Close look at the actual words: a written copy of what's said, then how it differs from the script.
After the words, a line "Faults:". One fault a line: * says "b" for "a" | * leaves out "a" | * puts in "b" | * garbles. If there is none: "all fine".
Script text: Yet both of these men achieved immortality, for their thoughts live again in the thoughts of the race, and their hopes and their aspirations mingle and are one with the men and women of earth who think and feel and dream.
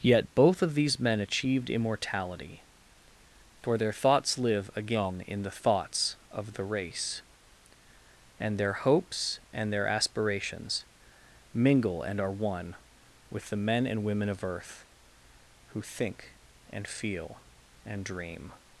Yet both of these men achieved immortality, for their thoughts live again in the thoughts of the race, and their hopes and their aspirations mingle and are one with the men and women of earth who think and feel and dream.
Faults:
all fine